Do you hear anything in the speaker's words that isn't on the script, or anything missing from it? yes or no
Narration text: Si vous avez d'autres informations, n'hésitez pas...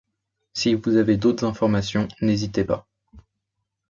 no